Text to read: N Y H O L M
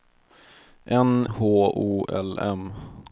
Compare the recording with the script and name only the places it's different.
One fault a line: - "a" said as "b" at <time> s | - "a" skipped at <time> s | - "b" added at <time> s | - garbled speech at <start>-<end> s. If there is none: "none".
- "Y" skipped at 1.3 s